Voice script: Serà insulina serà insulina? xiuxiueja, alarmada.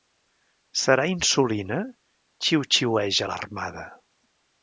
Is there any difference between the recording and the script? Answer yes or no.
yes